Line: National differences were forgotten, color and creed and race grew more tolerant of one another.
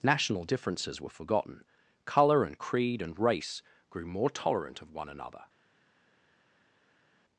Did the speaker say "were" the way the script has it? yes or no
yes